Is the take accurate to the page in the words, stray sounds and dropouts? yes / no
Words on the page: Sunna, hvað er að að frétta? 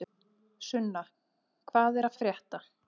yes